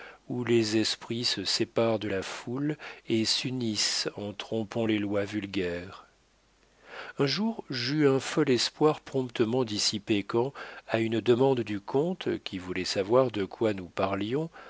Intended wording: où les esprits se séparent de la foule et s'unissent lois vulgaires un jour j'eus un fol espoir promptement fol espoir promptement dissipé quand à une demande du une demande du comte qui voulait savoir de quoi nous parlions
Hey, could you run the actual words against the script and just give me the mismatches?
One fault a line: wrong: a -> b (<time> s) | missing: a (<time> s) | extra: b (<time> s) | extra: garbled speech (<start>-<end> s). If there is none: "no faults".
extra: en trompant les (4.2 s)
missing: fol espoir promptement (9.6 s)
missing: une demande du (11.8 s)